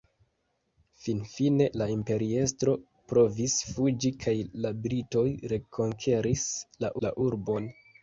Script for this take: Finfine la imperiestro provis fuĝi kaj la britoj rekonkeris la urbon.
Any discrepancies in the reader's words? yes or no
yes